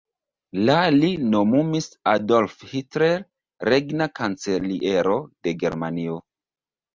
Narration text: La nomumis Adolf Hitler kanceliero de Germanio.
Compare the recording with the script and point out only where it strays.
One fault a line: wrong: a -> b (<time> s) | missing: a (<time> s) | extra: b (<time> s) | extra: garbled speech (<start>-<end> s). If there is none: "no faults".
extra: li (0.9 s)
extra: regna (3.7 s)